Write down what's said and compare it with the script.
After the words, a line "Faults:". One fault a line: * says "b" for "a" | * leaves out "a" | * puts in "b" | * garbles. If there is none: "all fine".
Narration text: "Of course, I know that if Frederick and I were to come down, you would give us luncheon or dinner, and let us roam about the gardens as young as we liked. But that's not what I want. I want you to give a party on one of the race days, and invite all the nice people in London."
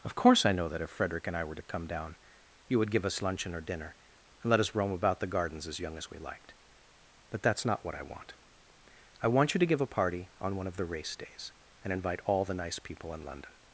"Of course, I know that if Frederick and I were to come down, you would give us luncheon or dinner, and let us roam about the gardens as young as we liked. But that's not what I want. I want you to give a party on one of the race days, and invite all the nice people in London."
Faults:
all fine